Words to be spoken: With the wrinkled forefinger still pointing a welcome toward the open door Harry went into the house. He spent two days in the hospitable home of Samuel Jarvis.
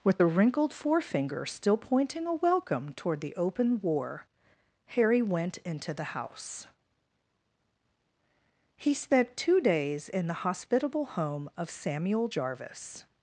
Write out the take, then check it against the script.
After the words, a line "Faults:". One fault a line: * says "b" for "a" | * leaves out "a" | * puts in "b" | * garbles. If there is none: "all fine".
With the wrinkled forefinger still pointing a welcome toward the open war Harry went into the house. He spent two days in the hospitable home of Samuel Jarvis.
Faults:
* says "war" for "door"